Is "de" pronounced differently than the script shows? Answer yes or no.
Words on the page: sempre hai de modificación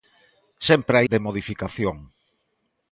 no